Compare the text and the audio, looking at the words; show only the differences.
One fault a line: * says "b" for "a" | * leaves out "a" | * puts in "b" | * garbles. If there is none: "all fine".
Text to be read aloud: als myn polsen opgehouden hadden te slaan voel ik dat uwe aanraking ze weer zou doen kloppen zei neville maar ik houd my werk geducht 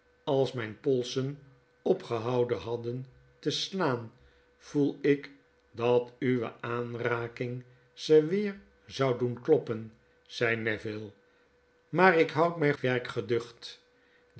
all fine